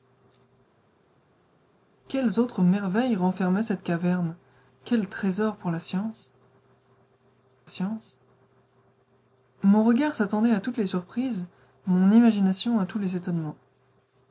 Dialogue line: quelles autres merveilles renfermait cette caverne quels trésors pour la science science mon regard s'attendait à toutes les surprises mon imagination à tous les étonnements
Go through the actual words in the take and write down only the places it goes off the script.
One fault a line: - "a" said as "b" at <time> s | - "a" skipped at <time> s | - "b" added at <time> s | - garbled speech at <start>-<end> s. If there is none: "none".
none